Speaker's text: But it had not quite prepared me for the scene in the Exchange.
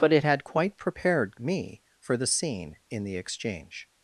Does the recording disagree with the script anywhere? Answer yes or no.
yes